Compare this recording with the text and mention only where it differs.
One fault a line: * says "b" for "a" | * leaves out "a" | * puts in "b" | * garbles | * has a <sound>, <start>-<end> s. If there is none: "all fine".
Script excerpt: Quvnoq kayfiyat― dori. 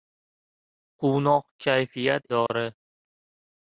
* has a dropout, 2.5-2.5 s